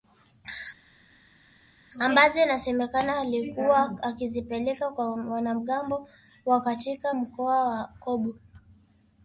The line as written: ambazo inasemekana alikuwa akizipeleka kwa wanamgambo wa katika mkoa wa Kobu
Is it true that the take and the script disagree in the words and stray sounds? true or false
false